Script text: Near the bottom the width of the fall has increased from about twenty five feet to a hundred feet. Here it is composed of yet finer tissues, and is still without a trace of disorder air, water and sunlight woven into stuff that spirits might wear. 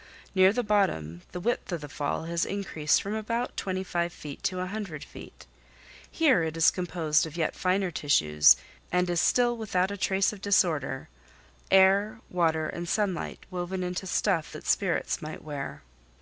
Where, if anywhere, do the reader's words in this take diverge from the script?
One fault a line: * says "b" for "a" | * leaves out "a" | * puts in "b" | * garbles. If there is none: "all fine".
all fine